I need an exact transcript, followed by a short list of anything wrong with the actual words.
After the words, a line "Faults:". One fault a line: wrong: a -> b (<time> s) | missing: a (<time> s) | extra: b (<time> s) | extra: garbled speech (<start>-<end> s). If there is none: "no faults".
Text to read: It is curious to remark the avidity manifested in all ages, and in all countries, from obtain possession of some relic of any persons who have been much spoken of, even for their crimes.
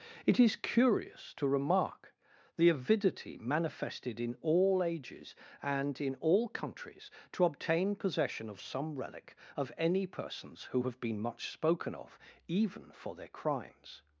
It is curious to remark the avidity manifested in all ages, and in all countries, to obtain possession of some relic of any persons who have been much spoken of, even for their crimes.
Faults:
wrong: from -> to (7.3 s)